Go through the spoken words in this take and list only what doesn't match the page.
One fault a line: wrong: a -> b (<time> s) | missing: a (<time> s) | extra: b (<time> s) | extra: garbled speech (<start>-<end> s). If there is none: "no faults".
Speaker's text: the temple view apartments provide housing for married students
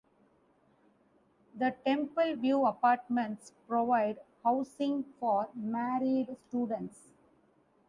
no faults